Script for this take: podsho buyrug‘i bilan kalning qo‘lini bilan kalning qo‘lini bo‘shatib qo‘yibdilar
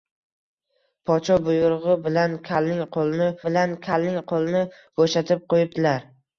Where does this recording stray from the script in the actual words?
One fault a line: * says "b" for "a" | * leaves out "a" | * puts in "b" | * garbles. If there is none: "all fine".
all fine